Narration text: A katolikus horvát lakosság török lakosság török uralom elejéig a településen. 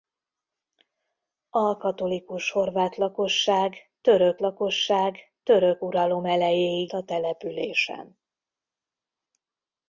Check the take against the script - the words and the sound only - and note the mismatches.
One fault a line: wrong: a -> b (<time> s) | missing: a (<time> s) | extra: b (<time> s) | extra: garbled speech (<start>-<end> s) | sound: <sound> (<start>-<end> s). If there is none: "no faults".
no faults